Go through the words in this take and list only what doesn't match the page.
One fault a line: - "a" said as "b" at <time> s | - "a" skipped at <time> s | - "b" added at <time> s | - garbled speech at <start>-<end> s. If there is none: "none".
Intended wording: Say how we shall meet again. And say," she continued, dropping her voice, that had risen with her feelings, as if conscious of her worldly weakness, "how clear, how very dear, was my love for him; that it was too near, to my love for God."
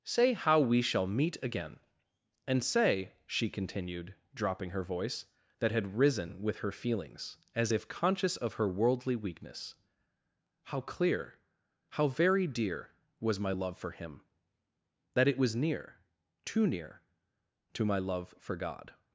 - "near" added at 15.6 s